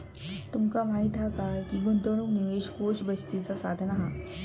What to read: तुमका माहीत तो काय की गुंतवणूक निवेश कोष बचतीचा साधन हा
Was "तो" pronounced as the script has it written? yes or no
no